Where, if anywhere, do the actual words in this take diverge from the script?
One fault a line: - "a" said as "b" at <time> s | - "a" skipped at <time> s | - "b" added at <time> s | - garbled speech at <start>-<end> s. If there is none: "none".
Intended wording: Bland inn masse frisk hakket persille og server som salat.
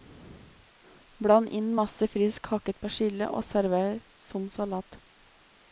none